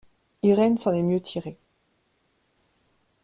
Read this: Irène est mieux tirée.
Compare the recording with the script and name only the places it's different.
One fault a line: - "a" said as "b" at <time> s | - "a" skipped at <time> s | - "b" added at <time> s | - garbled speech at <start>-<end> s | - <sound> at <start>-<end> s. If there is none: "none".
- "s'en" added at 0.8 s